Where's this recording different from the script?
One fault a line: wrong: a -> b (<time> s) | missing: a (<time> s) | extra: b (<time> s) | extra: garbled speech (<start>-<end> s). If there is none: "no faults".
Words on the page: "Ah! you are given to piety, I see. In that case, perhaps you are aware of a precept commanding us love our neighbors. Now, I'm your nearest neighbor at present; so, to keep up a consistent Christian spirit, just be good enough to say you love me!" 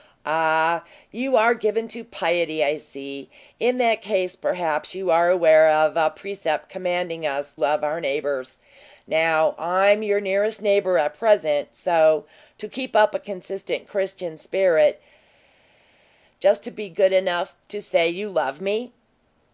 no faults